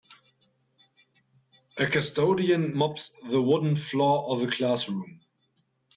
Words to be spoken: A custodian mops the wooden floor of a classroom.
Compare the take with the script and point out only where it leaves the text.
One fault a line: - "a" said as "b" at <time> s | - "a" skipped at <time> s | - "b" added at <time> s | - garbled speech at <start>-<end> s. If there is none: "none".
none